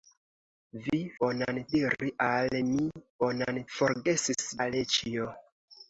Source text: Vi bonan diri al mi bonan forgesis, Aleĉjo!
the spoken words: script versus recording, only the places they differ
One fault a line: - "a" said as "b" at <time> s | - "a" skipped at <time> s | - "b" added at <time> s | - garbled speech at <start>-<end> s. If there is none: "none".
none